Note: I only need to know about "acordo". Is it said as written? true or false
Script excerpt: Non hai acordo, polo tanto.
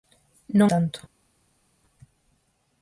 false